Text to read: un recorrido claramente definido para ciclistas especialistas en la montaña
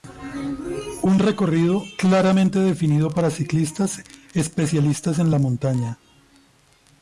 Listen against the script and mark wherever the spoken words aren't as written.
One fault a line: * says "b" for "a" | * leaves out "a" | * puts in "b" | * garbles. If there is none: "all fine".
all fine